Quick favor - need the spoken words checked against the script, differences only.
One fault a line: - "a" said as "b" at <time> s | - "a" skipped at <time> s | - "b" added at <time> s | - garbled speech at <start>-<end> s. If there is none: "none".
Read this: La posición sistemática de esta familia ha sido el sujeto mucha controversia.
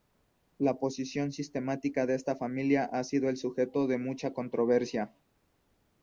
- "de" added at 3.9 s